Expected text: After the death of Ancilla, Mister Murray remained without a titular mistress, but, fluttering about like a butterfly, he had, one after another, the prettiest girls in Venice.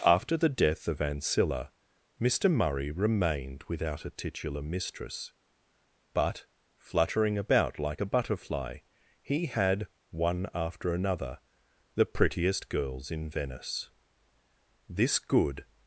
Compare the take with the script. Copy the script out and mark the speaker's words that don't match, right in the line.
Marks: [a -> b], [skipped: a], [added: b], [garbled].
After the death of Ancilla, Mister Murray remained without a titular mistress, but, fluttering about like a butterfly, he had, one after another, the prettiest girls in Venice. [added: This good]